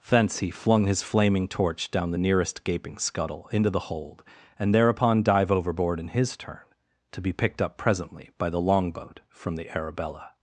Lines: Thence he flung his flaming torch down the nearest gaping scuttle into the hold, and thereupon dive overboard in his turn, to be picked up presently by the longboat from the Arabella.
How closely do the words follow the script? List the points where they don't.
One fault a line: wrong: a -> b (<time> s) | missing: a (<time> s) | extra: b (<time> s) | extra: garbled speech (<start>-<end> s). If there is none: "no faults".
no faults